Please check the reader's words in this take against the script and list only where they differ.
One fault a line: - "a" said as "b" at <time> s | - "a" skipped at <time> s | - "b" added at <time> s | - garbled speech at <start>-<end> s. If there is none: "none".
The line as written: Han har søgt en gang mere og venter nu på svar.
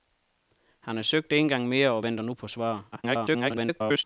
- garbled speech at 2.9-4.0 s